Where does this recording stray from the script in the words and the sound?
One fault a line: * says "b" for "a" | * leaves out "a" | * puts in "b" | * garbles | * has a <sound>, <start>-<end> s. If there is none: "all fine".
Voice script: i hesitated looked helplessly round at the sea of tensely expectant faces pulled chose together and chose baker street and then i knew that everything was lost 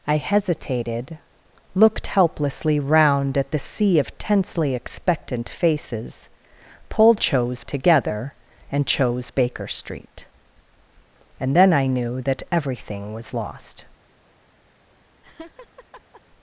* has a laugh, 15.2-16.2 s